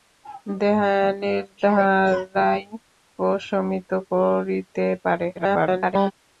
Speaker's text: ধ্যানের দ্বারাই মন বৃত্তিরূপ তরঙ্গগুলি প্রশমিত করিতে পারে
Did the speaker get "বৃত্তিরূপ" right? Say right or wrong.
wrong